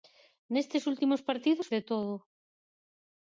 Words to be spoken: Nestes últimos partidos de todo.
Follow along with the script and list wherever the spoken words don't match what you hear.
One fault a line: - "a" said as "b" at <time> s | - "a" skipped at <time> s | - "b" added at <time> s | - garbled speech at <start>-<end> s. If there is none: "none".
none